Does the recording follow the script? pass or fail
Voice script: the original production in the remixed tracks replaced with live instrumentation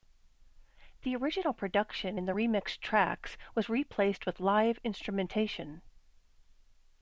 fail